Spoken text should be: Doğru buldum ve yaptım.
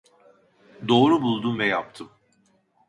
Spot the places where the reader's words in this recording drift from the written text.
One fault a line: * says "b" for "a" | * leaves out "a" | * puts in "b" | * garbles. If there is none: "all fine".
all fine